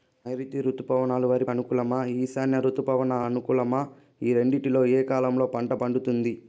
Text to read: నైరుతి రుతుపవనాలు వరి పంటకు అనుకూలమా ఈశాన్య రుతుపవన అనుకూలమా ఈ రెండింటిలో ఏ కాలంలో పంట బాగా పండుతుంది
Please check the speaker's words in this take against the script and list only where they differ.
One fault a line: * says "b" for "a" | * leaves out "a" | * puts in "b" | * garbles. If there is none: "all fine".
* leaves out "పంటకు"
* leaves out "బాగా"